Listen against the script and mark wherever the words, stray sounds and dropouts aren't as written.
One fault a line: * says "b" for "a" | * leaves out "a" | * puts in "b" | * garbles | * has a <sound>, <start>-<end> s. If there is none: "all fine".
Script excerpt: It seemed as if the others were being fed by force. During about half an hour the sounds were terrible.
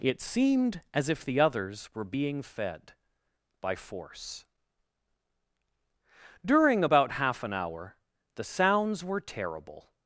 all fine